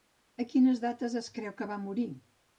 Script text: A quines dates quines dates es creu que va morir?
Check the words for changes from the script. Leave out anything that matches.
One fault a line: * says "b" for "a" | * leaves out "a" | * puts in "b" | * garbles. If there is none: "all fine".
* leaves out "quines dates"